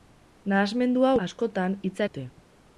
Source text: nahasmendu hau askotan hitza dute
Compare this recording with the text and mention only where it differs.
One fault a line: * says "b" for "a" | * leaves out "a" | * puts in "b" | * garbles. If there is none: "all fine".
all fine